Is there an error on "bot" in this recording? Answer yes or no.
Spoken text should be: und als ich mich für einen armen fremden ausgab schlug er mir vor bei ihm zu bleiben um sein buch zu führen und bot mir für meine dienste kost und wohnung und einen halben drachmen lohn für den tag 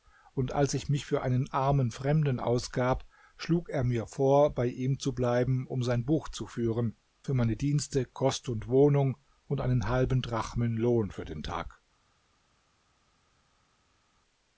yes